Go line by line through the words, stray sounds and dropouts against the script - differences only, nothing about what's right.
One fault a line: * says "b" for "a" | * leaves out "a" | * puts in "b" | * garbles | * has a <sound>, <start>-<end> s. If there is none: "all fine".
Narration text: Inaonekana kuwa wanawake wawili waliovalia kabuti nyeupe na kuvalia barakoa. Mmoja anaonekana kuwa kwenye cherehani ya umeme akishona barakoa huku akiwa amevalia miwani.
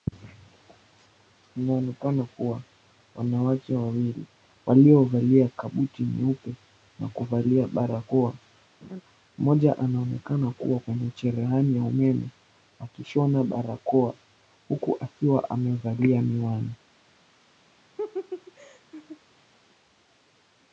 * has a laugh, 8.8-9.0 s
* has a laugh, 18.0-19.2 s